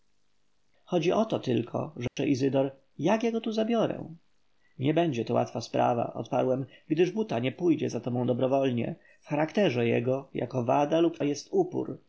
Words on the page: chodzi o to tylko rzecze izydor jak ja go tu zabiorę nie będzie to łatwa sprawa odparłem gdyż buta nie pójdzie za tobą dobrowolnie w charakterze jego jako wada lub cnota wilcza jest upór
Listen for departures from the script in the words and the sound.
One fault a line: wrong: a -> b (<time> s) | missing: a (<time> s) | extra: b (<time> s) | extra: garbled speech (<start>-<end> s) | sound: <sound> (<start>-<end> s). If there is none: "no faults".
sound: dropout (2.1-2.2 s)
missing: cnota wilcza (11.2 s)